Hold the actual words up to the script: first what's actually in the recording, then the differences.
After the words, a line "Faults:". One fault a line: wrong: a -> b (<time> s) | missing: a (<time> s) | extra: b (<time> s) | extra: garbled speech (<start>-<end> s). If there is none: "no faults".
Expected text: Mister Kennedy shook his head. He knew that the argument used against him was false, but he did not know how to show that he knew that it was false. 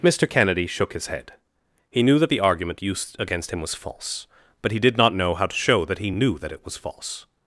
Mister Kennedy shook his head. He knew that the argument used against him was false, but he did not know how to show that he knew that it was false.
Faults:
no faults